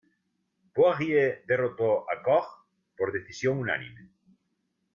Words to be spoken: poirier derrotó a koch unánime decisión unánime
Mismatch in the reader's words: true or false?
true